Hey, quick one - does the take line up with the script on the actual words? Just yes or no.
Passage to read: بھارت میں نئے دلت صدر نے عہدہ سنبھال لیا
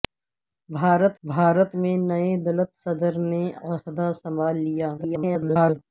no